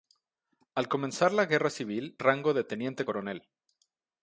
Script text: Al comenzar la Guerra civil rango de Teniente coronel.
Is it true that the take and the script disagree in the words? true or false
false